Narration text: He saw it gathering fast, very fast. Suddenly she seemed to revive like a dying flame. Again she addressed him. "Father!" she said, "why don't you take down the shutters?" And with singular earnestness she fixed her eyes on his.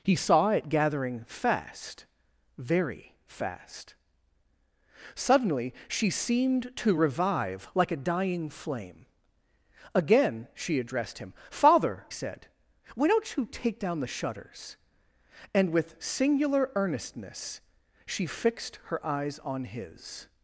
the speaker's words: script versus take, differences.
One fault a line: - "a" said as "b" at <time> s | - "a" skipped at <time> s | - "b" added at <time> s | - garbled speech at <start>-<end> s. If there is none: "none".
- "she" skipped at 12.1 s